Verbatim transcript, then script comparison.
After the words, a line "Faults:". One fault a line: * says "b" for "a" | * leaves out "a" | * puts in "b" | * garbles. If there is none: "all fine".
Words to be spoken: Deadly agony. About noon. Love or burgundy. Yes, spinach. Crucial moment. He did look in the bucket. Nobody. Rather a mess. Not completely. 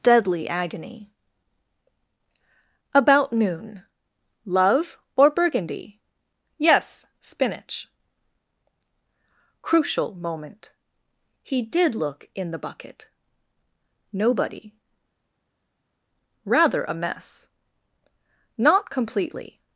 Deadly agony. About noon. Love or burgundy. Yes, spinach. Crucial moment. He did look in the bucket. Nobody. Rather a mess. Not completely.
Faults:
all fine